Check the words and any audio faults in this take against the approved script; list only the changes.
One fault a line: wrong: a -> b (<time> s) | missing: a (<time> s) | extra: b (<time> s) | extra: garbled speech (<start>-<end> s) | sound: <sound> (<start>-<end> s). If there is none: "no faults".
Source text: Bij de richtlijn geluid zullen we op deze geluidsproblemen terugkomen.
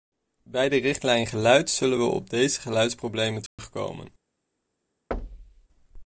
sound: dropout (3.5-3.6 s)
sound: thud (5.1-5.7 s)